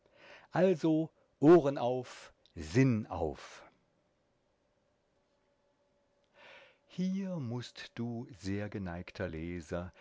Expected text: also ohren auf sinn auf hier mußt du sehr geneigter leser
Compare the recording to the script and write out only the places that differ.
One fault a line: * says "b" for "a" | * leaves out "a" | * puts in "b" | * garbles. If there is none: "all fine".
all fine